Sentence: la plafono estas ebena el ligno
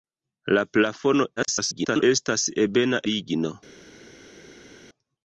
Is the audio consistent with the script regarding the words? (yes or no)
no